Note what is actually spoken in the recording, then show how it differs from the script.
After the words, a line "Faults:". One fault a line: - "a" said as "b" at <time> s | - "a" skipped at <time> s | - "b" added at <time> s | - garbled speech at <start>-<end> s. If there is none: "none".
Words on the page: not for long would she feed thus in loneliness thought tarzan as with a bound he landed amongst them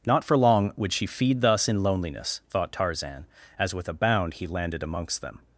not for long would she feed thus in loneliness thought tarzan as with a bound he landed amongst them
Faults:
none